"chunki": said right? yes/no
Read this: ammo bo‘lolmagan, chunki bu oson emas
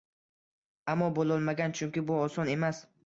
yes